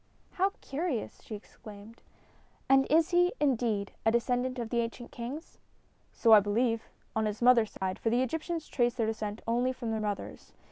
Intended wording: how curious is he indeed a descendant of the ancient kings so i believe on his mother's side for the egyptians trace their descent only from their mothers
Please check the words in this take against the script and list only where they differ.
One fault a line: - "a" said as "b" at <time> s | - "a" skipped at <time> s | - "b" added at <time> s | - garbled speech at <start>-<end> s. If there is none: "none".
- "she exclaimed and" added at 1.2 s